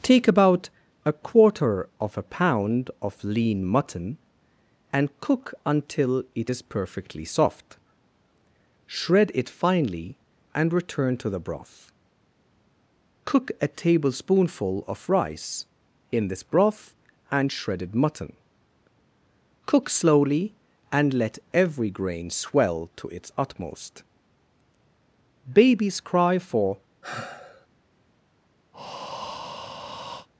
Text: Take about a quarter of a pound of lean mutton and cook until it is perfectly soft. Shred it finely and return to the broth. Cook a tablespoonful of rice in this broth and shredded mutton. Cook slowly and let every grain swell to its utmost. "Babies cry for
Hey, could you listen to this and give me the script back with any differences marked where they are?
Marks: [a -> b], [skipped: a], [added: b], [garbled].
Take about a quarter of a pound of lean mutton and cook until it is perfectly soft. Shred it finely and return to the broth. Cook a tablespoonful of rice in this broth and shredded mutton. Cook slowly and let every grain swell to its utmost. "Babies cry for